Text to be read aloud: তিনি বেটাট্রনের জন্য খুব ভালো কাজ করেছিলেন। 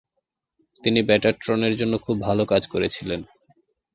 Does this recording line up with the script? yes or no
yes